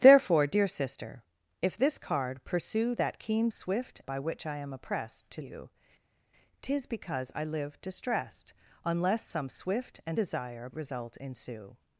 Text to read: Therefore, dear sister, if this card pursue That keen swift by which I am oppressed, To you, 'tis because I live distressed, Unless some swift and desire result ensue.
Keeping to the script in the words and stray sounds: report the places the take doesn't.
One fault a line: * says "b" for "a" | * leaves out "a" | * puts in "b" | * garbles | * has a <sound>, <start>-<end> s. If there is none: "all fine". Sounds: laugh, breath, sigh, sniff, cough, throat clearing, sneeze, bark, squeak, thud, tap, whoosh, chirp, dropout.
all fine